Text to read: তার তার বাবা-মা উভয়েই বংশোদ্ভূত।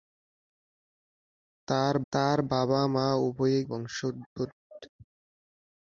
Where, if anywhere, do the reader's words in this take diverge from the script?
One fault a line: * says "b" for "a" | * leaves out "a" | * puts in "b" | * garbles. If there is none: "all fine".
all fine